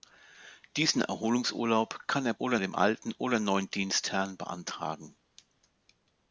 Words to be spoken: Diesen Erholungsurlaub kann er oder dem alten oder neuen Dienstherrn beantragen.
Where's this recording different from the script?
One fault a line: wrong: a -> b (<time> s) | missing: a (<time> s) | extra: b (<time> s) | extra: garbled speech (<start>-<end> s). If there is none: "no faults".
no faults